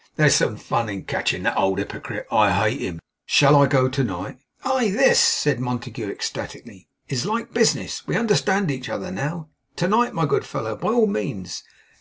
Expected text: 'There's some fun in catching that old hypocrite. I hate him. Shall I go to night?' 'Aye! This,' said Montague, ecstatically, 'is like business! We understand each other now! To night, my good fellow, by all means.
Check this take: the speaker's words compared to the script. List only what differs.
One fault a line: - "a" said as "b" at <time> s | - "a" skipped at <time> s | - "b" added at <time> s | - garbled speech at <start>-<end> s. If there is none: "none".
none